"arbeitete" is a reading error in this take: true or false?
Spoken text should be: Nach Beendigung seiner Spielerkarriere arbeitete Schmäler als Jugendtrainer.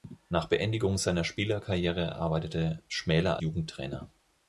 false